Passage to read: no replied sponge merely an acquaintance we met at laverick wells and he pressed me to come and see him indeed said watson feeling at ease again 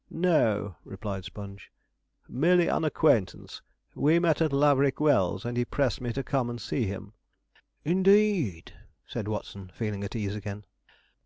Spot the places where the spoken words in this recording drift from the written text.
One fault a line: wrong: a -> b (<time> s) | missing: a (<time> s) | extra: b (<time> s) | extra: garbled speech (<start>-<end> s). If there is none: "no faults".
no faults